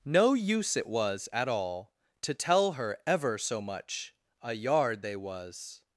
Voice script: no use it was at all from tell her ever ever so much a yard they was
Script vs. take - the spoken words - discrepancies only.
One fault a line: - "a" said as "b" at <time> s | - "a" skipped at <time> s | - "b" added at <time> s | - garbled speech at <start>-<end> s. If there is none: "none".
- "from" said as "to" at 2.2 s
- "ever" skipped at 3.4 s